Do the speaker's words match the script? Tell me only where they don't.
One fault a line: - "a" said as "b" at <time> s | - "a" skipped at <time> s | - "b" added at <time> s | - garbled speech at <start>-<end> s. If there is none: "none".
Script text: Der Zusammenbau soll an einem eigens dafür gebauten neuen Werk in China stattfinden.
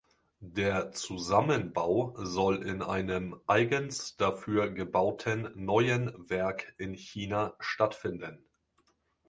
- "an" said as "in" at 2.6 s